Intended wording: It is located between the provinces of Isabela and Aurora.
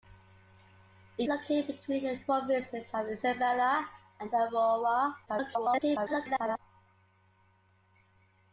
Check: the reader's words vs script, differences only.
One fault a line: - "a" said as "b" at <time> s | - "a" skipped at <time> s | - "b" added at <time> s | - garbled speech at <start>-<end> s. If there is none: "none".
- "is" skipped at 1.3 s
- "the" skipped at 2.2 s
- garbled speech at 5.3-6.6 s